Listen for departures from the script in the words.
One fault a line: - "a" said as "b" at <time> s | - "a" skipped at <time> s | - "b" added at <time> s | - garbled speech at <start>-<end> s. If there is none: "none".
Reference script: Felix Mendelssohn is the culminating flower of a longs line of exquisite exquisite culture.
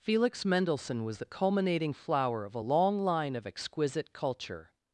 - "is" said as "was" at 1.1 s
- "longs" said as "long" at 2.6 s
- "exquisite" skipped at 4.1 s